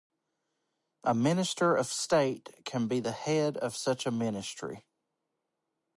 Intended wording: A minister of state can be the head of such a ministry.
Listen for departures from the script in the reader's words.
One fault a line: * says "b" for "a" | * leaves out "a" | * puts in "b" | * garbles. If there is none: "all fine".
all fine